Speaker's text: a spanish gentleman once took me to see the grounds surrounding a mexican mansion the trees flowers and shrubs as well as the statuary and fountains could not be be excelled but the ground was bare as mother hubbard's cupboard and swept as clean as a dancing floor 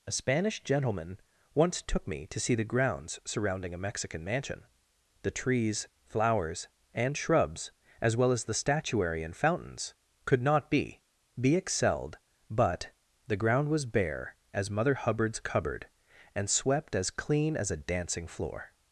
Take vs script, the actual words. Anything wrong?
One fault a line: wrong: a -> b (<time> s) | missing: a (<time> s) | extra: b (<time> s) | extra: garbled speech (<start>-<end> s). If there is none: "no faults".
no faults